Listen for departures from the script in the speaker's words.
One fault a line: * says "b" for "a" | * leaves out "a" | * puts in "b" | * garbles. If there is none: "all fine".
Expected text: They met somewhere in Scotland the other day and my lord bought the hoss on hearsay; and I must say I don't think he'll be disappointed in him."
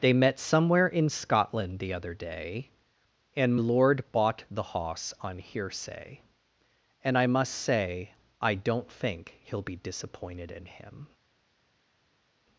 * leaves out "my"